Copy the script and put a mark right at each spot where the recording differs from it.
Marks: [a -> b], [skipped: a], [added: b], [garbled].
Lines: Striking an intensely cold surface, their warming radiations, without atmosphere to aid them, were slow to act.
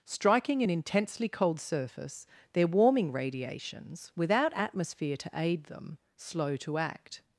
Striking an intensely cold surface, their warming radiations, without atmosphere to aid them, [skipped: were] slow to act.